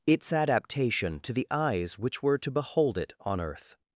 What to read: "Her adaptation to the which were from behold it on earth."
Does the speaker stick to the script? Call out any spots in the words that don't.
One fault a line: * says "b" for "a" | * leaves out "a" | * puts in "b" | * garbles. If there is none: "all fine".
* says "Its" for "Her"
* puts in "eyes"
* says "to" for "from"